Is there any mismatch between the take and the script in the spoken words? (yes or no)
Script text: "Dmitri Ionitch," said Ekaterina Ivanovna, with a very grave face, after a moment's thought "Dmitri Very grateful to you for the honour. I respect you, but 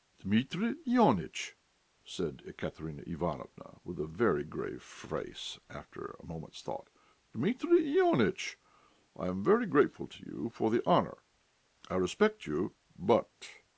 yes